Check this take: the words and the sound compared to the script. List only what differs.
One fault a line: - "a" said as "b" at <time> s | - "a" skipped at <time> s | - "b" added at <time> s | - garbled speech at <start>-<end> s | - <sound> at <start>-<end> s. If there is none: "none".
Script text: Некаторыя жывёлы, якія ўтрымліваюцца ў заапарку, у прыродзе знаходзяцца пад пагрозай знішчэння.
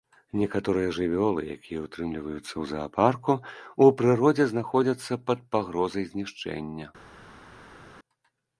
none